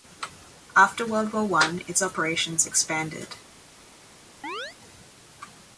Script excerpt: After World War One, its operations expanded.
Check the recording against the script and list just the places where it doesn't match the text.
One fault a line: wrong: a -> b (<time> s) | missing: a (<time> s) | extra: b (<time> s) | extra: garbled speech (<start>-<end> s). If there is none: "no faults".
no faults